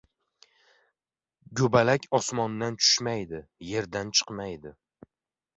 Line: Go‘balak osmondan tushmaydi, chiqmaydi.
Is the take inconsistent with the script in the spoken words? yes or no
yes